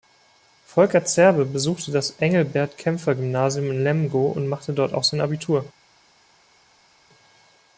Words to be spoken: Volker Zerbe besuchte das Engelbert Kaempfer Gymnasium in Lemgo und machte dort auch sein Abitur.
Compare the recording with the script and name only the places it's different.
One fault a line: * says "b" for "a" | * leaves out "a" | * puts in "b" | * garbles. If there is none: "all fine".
all fine